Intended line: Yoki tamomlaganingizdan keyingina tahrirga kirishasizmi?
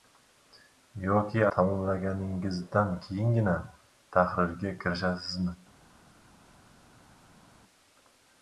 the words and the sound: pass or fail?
pass